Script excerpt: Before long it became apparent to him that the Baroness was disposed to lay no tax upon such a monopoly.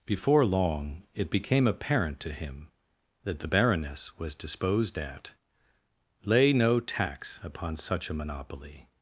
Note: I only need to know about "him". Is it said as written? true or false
true